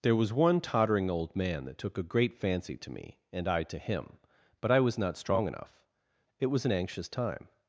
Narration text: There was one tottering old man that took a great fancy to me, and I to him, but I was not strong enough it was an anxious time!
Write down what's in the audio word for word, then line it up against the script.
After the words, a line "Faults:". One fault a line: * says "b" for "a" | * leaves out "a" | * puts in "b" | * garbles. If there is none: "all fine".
There was one tottering old man that took a great fancy to me, and I to him, but I was not strong enough it was an anxious time!
Faults:
all fine